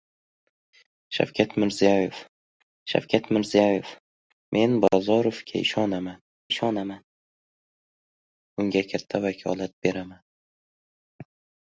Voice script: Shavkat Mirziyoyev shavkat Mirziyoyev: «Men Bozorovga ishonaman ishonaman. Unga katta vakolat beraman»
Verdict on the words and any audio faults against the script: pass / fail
pass